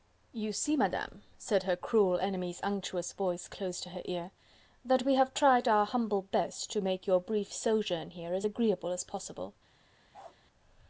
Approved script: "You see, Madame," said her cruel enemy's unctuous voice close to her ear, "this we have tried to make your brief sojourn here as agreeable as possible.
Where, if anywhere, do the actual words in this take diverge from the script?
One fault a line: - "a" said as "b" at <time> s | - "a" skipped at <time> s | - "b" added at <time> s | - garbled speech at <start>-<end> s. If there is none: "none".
- "this" said as "that" at 4.8 s
- "our humble best" added at 5.7 s